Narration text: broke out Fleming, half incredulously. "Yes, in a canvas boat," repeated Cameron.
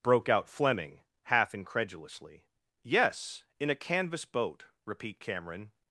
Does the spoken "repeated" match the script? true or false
false